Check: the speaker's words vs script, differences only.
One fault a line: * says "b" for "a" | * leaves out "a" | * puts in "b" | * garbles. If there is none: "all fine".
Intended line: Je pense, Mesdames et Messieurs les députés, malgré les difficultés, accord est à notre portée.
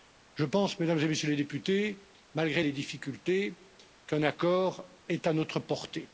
* puts in "qu'un"